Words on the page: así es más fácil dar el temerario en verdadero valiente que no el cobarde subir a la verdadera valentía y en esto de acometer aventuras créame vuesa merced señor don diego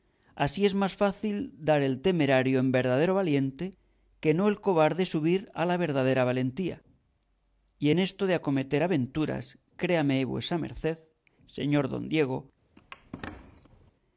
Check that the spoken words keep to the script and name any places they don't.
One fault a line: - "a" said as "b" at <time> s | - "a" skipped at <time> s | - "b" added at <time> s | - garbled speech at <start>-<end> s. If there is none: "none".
none